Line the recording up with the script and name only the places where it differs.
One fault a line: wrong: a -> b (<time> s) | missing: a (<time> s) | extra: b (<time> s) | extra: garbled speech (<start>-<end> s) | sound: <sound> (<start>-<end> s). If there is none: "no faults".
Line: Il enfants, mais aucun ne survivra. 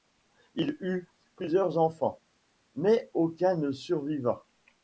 extra: eut plusieurs (0.8 s)